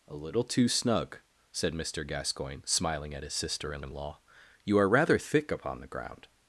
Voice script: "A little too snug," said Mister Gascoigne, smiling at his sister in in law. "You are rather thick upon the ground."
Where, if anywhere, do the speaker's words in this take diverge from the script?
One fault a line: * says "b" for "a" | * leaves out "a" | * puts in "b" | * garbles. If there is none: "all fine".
all fine